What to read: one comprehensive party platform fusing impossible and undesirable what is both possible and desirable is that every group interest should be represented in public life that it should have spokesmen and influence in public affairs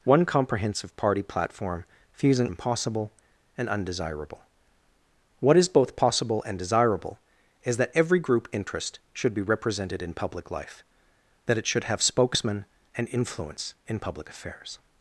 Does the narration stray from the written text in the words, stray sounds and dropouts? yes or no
no